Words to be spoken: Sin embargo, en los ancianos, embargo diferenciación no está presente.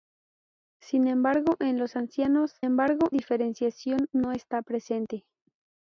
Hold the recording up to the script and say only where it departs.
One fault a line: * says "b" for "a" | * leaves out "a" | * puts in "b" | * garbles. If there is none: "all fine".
all fine